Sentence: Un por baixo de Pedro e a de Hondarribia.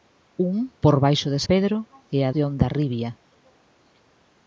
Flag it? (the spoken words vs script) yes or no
no